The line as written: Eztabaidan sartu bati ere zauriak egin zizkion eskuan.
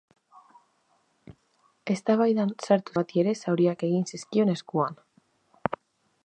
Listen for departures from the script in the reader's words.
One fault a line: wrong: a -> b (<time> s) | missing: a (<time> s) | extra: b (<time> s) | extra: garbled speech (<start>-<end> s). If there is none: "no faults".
no faults